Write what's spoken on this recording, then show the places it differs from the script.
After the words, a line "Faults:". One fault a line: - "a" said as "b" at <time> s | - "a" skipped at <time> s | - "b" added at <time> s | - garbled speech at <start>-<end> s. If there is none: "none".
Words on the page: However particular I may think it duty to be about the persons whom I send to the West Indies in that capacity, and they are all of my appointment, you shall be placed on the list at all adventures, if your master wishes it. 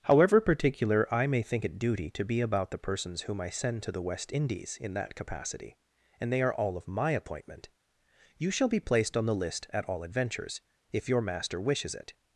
However particular I may think it duty to be about the persons whom I send to the West Indies in that capacity, and they are all of my appointment, you shall be placed on the list at all adventures, if your master wishes it.
Faults:
none